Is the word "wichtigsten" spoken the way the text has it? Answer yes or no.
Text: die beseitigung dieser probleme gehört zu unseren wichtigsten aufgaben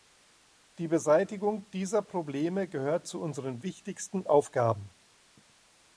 yes